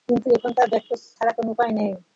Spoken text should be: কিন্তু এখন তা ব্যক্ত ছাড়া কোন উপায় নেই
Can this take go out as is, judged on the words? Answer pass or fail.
pass